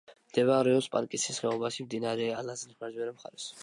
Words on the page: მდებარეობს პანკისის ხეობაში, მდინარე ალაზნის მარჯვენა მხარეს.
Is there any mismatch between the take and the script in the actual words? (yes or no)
no